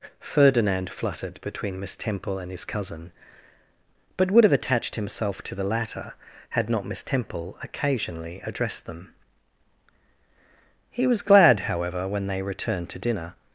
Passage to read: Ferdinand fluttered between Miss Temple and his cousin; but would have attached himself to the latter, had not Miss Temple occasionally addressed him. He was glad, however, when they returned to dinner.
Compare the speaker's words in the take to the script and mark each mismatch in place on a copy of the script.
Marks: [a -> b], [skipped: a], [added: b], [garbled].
Ferdinand fluttered between Miss Temple and his cousin; but would have attached himself to the latter, had not Miss Temple occasionally addressed [him. -> them] He was glad, however, when they returned to dinner.